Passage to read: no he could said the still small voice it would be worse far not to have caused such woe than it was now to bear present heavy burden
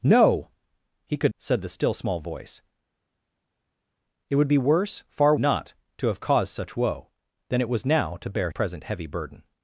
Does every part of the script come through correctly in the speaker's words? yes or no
yes